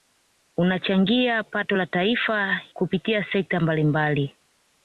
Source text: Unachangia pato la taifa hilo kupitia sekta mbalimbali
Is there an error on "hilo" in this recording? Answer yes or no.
yes